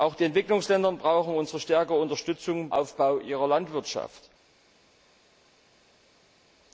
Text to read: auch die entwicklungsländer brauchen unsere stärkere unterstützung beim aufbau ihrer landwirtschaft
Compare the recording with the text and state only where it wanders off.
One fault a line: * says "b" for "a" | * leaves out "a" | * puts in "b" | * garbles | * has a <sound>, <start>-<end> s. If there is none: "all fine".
* leaves out "beim"